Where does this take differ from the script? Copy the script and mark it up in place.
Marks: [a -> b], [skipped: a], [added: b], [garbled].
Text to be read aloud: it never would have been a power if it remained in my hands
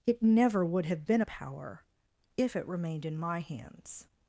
it never would have been a power if it remained in my hands